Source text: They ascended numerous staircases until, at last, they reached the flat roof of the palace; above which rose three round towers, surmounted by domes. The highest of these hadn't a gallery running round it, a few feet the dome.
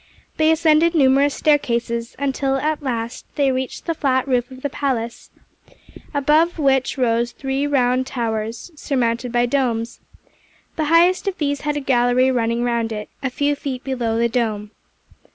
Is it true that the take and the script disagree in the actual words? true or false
true